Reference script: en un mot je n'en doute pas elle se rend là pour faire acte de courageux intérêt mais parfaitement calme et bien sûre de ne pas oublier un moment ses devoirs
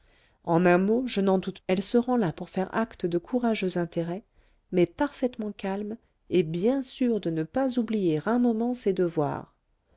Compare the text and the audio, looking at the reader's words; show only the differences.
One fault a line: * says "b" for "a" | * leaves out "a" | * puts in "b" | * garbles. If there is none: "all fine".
* leaves out "pas"